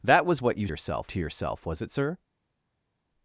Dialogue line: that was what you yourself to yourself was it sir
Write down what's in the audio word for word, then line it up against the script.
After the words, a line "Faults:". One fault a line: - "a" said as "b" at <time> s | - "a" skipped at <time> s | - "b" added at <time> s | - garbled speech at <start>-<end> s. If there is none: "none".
that was what you yourself to yourself was it sir
Faults:
none